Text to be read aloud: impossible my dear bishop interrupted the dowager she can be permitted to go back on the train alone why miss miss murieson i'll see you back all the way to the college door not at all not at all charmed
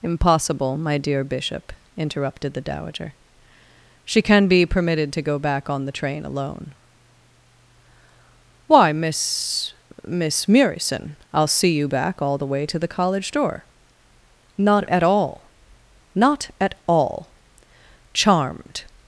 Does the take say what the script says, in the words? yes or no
yes